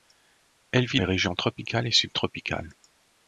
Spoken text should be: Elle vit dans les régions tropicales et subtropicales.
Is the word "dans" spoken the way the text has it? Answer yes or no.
no